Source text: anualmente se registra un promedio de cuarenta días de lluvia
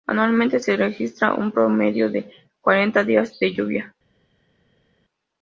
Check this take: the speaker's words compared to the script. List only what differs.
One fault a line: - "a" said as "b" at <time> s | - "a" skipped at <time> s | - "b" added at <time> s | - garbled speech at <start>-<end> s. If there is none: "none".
none